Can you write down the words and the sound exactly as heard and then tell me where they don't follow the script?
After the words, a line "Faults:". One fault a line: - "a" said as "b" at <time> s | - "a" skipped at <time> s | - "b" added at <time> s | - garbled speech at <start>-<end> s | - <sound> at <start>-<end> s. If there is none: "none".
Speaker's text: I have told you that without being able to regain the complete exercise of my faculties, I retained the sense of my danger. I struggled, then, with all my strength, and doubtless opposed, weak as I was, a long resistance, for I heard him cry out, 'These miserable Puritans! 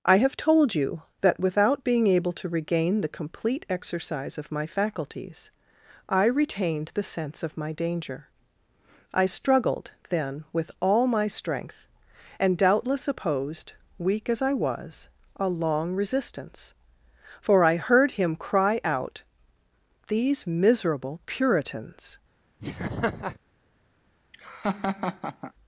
I have told you that without being able to regain the complete exercise of my faculties, I retained the sense of my danger. I struggled, then, with all my strength, and doubtless opposed, weak as I was, a long resistance, for I heard him cry out, 'These miserable Puritans!
Faults:
- laugh at 22.6-23.4 s
- laugh at 24.3-25.5 s